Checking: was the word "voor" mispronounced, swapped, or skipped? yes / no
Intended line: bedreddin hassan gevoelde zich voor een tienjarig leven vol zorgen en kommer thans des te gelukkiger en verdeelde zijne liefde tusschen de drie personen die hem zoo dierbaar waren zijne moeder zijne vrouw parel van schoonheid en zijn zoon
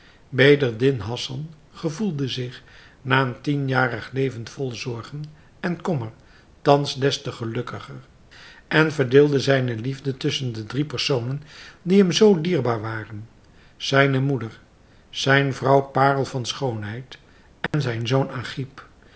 yes